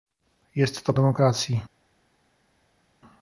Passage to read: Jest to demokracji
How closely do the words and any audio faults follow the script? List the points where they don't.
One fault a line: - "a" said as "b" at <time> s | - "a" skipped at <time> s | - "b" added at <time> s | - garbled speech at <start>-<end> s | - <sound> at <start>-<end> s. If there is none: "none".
none